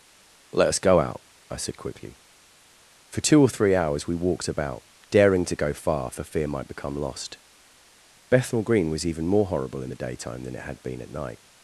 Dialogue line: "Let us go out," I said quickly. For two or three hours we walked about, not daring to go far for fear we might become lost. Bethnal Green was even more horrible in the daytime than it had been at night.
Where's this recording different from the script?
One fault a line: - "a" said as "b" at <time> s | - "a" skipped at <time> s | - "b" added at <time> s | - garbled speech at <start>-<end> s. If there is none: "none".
- "not" skipped at 4.8 s
- "we" skipped at 6.5 s